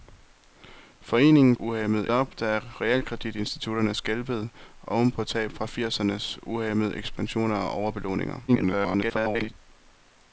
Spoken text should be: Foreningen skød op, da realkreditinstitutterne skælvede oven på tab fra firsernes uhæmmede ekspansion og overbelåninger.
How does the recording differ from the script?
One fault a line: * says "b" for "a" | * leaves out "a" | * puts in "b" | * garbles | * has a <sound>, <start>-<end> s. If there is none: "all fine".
* says "uhæmmede" for "skød"
* garbles